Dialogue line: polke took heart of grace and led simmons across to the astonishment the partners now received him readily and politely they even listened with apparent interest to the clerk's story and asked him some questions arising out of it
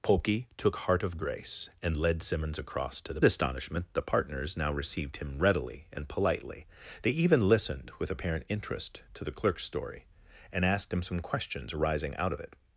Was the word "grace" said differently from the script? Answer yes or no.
no